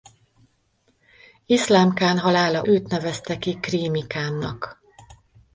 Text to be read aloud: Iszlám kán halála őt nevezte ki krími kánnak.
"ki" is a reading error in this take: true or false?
false